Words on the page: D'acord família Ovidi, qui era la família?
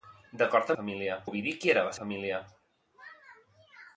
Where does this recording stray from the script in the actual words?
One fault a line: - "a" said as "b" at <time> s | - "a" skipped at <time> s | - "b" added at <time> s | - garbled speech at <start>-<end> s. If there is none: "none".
none